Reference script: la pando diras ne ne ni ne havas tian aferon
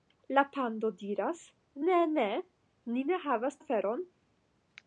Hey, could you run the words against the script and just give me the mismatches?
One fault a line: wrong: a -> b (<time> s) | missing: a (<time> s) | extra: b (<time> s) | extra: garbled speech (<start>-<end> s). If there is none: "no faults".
missing: tian (3.6 s)